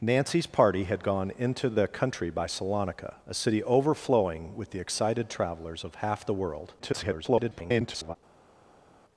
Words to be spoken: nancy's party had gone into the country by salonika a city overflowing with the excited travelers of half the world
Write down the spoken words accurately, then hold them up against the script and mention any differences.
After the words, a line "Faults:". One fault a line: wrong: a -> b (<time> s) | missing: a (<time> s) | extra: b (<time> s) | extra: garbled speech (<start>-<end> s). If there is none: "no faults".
nancy's party had gone into the country by salonika a city overflowing with the excited travelers of half the world [garbled]
Faults:
extra: garbled speech (6.8-8.2 s)